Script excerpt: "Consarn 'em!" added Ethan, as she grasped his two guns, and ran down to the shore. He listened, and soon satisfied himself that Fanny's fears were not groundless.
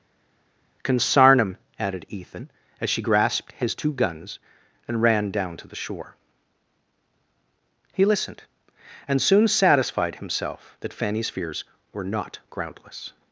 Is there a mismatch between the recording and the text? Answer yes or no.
no